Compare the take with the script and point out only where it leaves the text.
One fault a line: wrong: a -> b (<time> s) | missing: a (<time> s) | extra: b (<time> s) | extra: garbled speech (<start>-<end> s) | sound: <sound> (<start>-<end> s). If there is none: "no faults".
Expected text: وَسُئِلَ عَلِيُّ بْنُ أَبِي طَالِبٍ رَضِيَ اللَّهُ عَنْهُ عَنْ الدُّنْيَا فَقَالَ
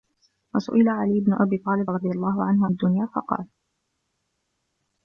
missing: عَنْ (2.7 s)